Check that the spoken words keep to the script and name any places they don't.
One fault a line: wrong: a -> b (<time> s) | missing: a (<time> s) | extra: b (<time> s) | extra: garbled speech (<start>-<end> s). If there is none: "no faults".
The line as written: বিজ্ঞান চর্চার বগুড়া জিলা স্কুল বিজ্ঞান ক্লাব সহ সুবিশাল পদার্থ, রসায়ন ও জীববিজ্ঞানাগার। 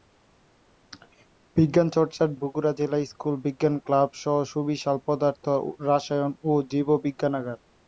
no faults